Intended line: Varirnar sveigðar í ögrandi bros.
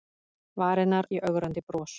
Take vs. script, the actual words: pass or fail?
fail